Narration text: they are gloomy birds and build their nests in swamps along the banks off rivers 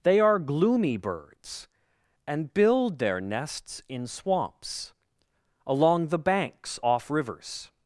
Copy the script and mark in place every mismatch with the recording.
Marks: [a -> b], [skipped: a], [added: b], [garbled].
they are gloomy birds and build their nests in swamps along the banks off rivers